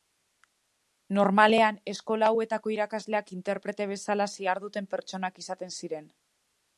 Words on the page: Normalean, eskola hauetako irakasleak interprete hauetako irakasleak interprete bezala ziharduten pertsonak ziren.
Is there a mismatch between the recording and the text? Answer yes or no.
yes